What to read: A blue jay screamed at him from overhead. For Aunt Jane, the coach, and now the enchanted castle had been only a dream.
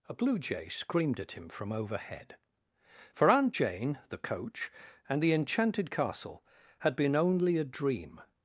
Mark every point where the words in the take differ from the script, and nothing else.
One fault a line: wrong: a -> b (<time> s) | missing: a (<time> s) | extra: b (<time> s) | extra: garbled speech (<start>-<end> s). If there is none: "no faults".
missing: now (5.2 s)